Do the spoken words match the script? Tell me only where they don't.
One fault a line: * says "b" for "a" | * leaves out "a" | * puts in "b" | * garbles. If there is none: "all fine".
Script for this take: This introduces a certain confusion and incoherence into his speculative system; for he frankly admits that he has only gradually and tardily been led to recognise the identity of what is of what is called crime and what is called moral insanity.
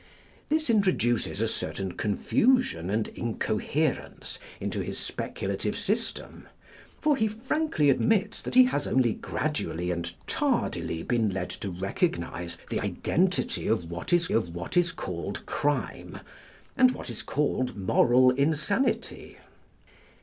all fine